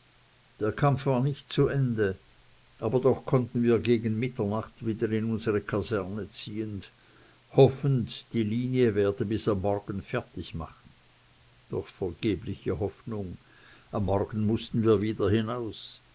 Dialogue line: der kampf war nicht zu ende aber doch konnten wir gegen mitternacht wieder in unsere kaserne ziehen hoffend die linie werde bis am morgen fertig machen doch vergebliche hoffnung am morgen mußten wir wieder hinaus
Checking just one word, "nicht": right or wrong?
right